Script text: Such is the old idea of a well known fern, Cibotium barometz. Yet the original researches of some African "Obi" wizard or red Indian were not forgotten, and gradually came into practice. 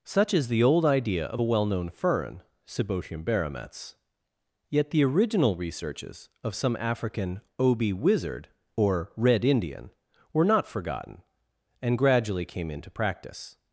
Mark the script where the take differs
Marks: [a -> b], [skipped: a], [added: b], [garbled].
Such is the old idea of a well known fern, Cibotium barometz. Yet the original researches of some African "Obi" wizard or red Indian were not forgotten, and gradually came into practice.